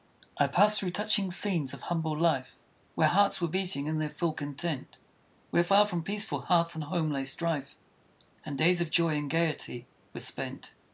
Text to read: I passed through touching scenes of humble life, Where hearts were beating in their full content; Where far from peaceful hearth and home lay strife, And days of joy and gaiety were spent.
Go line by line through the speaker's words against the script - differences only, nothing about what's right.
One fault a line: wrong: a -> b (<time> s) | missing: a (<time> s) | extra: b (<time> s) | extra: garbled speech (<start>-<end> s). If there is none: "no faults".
no faults